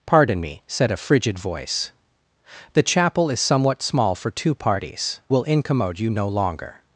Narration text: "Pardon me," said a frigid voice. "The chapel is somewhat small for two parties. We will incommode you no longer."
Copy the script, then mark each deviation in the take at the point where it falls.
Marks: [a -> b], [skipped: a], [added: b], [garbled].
"Pardon me," said a frigid voice. "The chapel is somewhat small for two parties. [skipped: We] will incommode you no longer."